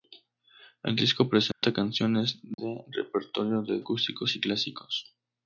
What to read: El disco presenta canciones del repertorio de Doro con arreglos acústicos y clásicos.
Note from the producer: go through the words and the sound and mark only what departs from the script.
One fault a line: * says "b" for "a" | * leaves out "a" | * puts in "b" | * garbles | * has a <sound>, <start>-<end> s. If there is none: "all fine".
* has a dropout, 1.5-1.6 s
* has a dropout, 2.5-2.6 s
* leaves out "Doro con arreglos"